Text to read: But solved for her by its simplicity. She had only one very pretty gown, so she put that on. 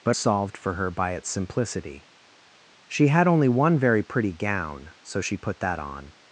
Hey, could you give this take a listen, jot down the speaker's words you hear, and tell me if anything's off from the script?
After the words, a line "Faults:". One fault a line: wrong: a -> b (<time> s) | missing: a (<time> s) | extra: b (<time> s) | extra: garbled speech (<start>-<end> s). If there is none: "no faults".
But solved for her by its simplicity. She had only one very pretty gown, so she put that on.
Faults:
no faults